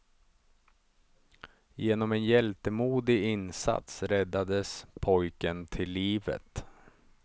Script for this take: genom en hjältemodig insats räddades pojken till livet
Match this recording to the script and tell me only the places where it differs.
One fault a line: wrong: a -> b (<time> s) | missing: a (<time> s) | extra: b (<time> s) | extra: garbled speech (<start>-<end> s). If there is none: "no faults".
no faults